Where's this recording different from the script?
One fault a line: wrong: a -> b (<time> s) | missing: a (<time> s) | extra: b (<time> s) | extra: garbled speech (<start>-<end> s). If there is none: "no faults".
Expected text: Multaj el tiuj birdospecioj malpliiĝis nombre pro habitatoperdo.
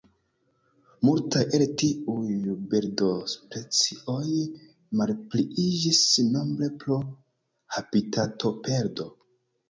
no faults